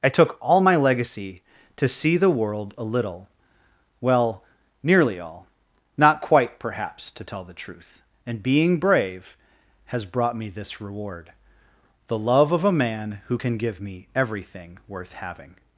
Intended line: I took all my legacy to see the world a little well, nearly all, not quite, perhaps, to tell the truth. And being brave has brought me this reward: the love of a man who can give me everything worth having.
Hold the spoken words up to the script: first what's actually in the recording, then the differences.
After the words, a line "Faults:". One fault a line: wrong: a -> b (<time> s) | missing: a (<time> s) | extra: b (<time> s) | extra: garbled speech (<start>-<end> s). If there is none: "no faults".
I took all my legacy to see the world a little well, nearly all, not quite, perhaps, to tell the truth. And being brave has brought me this reward: the love of a man who can give me everything worth having.
Faults:
no faults